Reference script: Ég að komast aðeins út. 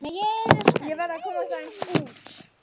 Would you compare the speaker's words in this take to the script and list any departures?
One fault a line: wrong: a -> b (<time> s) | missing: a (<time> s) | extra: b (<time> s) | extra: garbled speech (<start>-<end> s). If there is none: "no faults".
extra: verð (1.0 s)